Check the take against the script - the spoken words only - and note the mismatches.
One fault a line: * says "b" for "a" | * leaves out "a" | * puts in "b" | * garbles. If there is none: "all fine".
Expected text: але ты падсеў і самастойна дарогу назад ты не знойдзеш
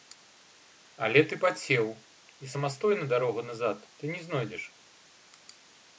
all fine